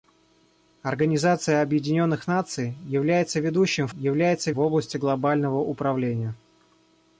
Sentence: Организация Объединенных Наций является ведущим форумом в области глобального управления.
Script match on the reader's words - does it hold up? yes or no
no